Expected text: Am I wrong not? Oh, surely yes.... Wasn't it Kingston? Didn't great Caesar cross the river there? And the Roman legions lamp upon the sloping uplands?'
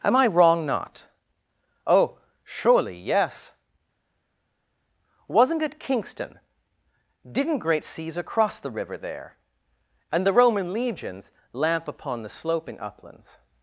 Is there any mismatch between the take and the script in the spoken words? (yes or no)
no